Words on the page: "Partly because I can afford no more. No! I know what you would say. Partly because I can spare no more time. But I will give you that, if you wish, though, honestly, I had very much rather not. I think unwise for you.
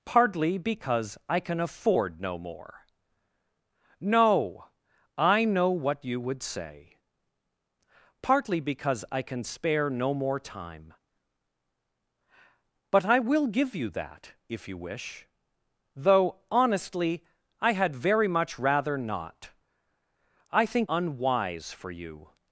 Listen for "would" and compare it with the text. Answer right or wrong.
right